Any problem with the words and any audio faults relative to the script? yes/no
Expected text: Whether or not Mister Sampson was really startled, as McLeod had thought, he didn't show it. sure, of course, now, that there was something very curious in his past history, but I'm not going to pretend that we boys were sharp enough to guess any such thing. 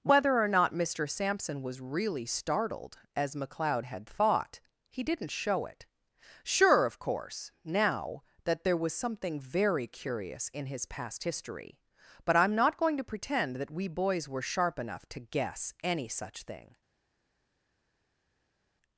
no